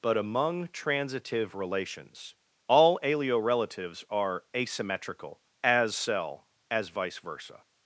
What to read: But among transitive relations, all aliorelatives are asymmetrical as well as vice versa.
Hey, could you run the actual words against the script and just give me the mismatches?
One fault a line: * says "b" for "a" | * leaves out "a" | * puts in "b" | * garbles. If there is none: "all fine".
* says "cell" for "well"